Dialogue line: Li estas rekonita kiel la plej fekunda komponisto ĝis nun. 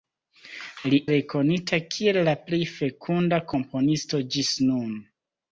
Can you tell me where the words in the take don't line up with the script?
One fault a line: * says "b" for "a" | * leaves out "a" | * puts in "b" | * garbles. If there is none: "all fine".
* leaves out "estas"